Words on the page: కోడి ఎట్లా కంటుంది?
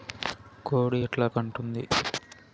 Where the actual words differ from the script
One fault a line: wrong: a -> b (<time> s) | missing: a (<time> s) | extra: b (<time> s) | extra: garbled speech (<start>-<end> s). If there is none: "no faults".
no faults